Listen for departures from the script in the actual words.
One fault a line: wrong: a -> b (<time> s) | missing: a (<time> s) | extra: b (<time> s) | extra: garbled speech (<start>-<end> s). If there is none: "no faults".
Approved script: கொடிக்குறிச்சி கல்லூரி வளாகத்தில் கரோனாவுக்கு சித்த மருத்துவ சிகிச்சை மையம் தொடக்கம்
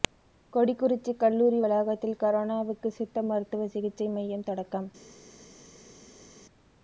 no faults